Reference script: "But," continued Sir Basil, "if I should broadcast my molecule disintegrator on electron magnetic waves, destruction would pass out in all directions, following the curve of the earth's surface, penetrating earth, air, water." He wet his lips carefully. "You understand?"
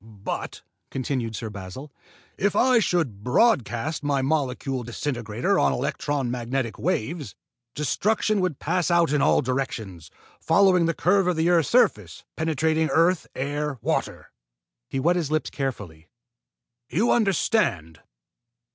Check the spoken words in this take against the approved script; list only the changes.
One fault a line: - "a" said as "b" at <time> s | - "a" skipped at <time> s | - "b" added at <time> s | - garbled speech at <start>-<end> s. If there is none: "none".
none